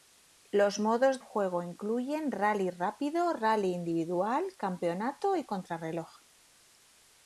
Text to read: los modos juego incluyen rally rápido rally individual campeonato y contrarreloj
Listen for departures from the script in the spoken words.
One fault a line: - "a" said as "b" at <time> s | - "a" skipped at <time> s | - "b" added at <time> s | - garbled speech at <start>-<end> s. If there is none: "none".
none